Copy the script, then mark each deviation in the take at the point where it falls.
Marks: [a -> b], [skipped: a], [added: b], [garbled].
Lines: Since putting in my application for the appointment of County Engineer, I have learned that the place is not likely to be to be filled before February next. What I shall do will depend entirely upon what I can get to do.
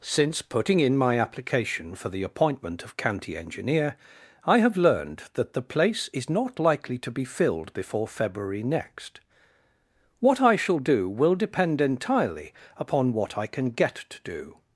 Since putting in my application for the appointment of County Engineer, I have learned that the place is not likely to be [skipped: to be] filled before February next. What I shall do will depend entirely upon what I can get to do.